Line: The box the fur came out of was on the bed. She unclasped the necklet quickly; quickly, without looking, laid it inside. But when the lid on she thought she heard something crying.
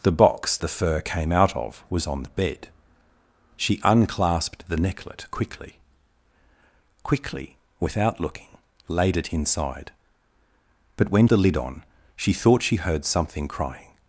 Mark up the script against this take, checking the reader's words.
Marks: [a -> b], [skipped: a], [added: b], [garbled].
The box the fur came out of was on the bed. She unclasped the necklet quickly; quickly, without looking, laid it inside. But when the lid on she thought she heard something crying.